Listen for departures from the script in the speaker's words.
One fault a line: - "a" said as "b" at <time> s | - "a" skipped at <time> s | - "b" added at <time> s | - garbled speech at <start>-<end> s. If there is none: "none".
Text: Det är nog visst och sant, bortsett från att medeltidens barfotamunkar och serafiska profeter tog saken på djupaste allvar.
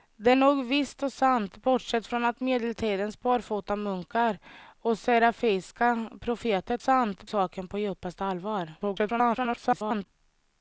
- "är" skipped at 0.3 s
- "tog" said as "sant" at 6.8 s
- garbled speech at 8.8-10.1 s